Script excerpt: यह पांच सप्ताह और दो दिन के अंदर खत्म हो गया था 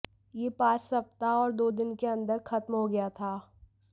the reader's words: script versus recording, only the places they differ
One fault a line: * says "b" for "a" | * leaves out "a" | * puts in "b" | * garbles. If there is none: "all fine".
all fine